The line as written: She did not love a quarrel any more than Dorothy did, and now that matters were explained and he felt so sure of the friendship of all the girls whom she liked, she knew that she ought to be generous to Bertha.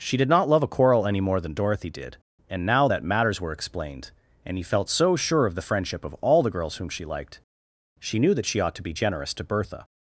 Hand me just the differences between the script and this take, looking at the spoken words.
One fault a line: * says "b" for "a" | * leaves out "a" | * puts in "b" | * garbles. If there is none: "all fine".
all fine